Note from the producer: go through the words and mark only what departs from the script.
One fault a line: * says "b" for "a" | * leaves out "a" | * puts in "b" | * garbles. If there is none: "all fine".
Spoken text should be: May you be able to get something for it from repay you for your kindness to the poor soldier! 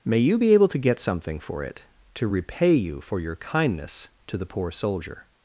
* says "to" for "from"